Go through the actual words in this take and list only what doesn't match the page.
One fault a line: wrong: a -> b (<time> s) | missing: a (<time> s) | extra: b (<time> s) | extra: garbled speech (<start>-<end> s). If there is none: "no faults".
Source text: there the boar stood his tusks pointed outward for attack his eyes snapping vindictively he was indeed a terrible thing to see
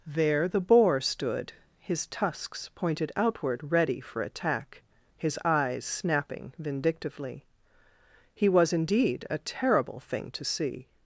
extra: ready (3.7 s)